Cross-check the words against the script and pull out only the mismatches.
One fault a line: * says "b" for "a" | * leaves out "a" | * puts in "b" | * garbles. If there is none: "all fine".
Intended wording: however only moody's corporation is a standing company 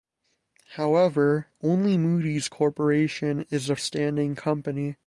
all fine